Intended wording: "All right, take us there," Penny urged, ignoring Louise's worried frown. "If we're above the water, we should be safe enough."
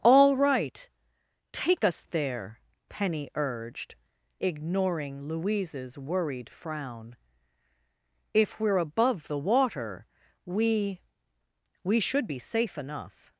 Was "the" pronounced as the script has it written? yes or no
yes